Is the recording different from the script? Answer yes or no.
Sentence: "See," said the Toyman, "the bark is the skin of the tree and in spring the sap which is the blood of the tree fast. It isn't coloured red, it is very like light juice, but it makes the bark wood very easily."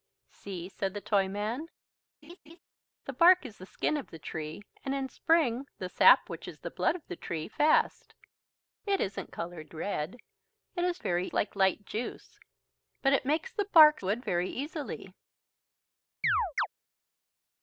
no